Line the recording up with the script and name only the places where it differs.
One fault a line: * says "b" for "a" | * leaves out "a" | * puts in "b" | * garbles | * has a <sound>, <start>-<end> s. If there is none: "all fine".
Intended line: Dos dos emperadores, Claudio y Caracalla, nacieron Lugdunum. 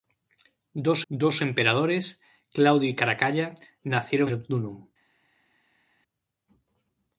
all fine